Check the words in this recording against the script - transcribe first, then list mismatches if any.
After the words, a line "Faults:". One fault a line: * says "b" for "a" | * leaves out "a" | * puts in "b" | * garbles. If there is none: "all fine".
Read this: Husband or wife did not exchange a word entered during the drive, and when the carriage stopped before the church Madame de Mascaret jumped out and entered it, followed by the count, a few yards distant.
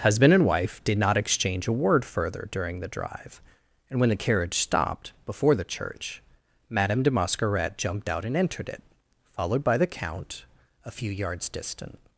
Husband and wife did not exchange a word further during the drive, and when the carriage stopped before the church Madame de Mascaret jumped out and entered it, followed by the count, a few yards distant.
Faults:
* says "and" for "or"
* says "further" for "entered"